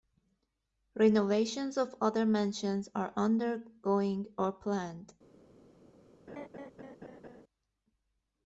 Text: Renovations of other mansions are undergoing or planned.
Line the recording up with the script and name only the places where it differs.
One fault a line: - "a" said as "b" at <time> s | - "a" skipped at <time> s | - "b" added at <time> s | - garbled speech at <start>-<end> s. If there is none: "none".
none